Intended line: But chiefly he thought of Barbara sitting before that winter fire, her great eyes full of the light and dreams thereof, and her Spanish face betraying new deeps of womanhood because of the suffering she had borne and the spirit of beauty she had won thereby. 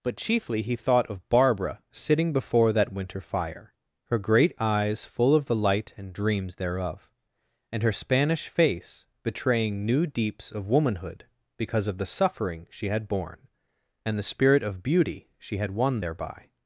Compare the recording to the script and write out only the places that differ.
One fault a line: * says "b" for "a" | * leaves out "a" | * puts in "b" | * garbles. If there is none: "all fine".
all fine